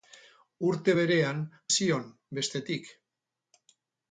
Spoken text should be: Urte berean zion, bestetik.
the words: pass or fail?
pass